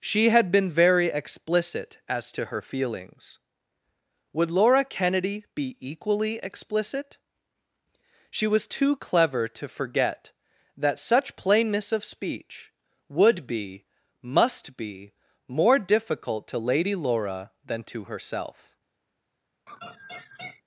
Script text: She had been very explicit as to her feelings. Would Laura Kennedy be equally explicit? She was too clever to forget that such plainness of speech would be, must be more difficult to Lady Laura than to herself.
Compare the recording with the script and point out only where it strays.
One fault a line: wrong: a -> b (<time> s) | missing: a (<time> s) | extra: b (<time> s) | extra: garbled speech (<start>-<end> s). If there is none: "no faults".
no faults